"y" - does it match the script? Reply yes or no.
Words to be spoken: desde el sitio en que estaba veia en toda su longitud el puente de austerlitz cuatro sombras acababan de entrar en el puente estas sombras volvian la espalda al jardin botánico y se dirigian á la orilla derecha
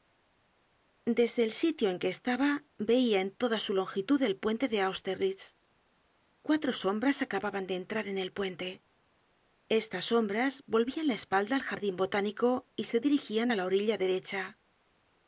yes